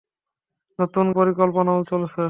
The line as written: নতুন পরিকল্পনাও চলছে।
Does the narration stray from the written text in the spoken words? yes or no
no